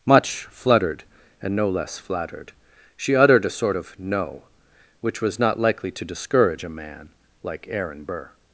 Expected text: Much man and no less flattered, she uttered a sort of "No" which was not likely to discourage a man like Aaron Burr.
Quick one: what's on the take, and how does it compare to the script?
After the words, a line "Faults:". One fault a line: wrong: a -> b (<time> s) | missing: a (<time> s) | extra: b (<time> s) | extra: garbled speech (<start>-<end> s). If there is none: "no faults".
Much fluttered and no less flattered, she uttered a sort of "No" which was not likely to discourage a man like Aaron Burr.
Faults:
wrong: man -> fluttered (0.5 s)